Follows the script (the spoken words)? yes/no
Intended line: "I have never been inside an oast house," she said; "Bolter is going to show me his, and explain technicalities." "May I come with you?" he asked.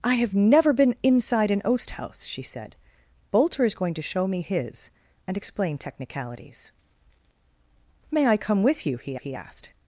no